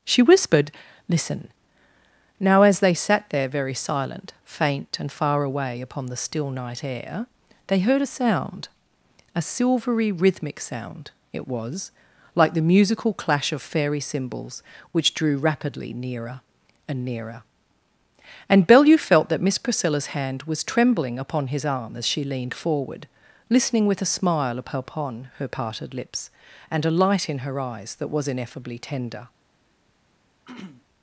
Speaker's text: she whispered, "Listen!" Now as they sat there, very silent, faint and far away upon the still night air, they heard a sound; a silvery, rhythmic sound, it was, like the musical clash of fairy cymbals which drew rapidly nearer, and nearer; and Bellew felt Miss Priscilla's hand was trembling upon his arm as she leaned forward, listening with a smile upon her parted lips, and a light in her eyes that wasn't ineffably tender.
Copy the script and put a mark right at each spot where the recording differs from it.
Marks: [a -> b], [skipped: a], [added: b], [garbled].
she whispered, "Listen!" Now as they sat there, very silent, faint and far away upon the still night air, they heard a sound; a silvery, rhythmic sound, it was, like the musical clash of fairy cymbals which drew rapidly nearer, and nearer; and Bellew felt [added: that] Miss Priscilla's hand was trembling upon his arm as she leaned forward, listening with a smile upon her parted lips, and a light in her eyes that [wasn't -> was] ineffably tender.